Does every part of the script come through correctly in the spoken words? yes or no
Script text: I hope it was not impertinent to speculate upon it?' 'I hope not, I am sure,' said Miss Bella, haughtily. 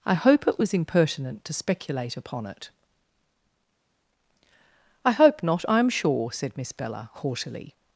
no